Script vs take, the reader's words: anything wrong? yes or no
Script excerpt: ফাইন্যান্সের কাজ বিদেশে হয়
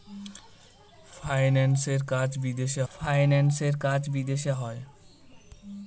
yes